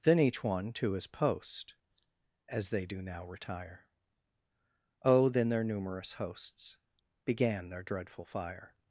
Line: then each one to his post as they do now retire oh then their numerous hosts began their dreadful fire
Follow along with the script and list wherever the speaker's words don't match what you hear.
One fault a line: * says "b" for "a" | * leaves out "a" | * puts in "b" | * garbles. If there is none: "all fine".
all fine